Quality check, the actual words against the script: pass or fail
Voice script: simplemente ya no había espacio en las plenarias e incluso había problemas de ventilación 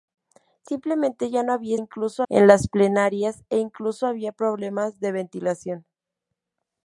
fail